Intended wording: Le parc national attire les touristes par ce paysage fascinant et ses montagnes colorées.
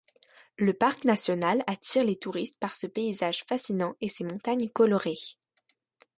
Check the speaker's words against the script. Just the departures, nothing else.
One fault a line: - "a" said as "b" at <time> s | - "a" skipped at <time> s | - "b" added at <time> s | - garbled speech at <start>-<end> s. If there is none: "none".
none